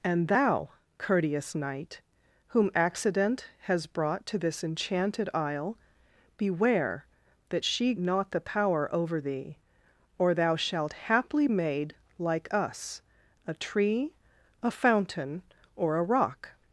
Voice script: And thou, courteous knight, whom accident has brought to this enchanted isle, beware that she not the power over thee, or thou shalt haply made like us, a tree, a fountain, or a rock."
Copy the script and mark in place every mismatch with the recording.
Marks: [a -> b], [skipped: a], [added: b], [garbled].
And thou, courteous knight, whom accident has brought to this enchanted isle, beware that she not the power over thee, or thou shalt haply made like us, a tree, a fountain, or a rock."